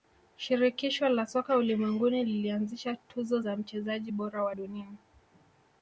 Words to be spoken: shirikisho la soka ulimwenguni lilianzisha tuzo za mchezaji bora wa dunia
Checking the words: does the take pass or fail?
pass